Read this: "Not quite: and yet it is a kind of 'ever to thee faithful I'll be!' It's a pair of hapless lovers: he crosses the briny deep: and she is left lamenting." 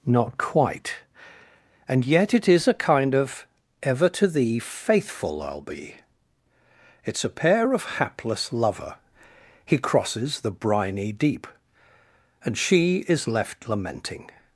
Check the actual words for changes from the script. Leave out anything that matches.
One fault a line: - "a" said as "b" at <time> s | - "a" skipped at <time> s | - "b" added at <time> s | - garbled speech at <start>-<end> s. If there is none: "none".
- "lovers" said as "lover" at 8.5 s